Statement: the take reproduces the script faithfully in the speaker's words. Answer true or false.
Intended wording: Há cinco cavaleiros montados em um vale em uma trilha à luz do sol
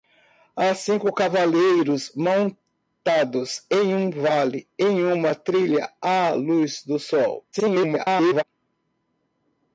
false